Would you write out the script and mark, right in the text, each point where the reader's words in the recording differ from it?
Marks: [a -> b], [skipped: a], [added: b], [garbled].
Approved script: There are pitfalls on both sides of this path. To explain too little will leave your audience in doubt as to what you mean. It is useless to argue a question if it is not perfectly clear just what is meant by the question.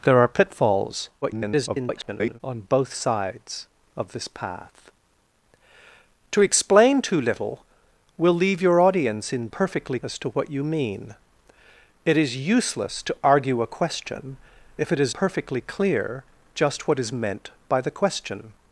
There are pitfalls [garbled] on both sides of this path. To explain too little will leave your audience in [doubt -> perfectly] as to what you mean. It is useless to argue a question if it is [skipped: not] perfectly clear just what is meant by the question.